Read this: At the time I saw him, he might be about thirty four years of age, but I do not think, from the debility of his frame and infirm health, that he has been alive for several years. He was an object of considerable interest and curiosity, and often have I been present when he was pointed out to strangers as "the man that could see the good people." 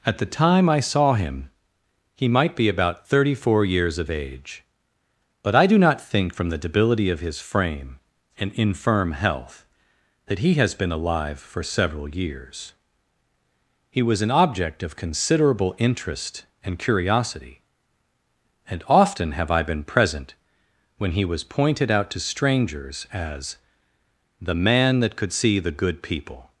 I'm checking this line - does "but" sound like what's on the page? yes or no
yes